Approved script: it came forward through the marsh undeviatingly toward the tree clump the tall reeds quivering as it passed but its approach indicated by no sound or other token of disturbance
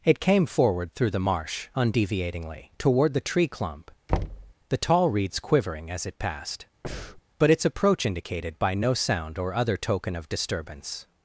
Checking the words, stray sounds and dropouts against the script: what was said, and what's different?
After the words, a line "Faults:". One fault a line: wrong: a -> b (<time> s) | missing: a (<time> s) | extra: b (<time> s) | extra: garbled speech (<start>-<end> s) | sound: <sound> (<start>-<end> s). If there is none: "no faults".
it came forward through the marsh undeviatingly toward the tree clump the tall reeds quivering as it passed but its approach indicated by no sound or other token of disturbance
Faults:
sound: thud (4.1-4.5 s)
sound: breath (6.8-7.2 s)